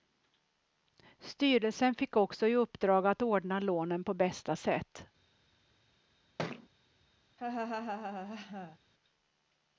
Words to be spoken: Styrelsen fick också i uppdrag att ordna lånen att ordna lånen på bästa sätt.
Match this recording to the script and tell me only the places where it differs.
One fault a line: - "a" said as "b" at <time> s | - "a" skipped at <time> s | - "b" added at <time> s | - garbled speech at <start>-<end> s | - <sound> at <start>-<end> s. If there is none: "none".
- "att ordna lånen" skipped at 4.0 s
- thud at 6.4-6.7 s
- laugh at 7.4-8.8 s